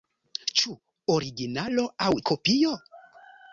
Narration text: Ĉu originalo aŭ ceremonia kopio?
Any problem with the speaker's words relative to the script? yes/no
yes